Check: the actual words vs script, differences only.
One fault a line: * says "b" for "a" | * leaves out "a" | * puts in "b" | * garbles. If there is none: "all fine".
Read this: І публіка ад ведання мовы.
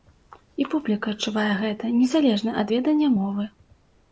* puts in "адчувае гэта незалежна"